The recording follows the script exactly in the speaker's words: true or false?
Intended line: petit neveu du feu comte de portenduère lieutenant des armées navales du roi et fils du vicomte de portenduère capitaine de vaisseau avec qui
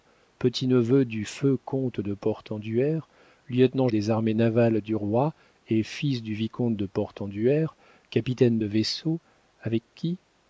true